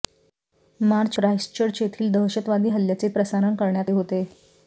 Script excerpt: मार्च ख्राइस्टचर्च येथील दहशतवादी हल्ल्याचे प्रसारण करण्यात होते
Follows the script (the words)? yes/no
yes